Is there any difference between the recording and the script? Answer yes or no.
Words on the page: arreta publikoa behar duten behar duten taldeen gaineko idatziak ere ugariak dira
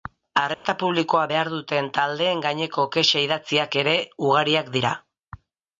yes